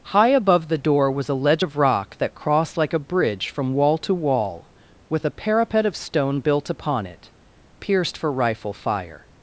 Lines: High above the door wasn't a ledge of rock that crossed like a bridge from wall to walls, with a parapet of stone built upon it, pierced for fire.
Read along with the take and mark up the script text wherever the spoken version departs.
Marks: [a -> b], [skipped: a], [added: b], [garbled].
High above the door [wasn't -> was] a ledge of rock that crossed like a bridge from wall to [walls, -> wall] with a parapet of stone built upon it, pierced for [added: rifle] fire.